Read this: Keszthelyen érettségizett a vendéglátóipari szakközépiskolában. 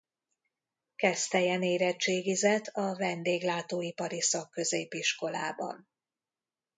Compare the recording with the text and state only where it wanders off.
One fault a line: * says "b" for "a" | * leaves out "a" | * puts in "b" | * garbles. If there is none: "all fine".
all fine